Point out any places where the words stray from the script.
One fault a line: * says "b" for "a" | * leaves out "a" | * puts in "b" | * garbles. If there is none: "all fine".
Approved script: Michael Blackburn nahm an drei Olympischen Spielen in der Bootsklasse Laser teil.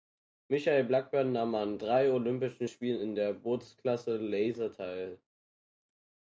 all fine